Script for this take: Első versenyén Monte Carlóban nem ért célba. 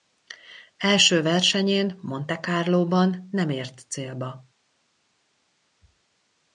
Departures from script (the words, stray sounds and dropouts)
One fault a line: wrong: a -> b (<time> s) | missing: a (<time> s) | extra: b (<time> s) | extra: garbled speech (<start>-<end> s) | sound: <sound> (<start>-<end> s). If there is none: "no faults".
no faults